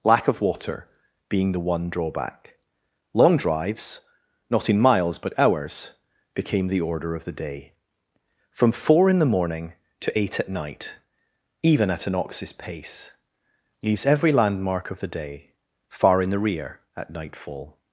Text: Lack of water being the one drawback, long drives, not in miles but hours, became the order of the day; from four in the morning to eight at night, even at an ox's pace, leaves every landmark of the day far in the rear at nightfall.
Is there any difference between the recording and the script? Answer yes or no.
no